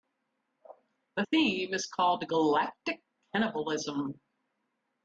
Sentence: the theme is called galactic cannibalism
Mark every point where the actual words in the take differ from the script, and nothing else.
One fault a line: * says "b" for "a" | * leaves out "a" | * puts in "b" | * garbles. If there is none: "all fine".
all fine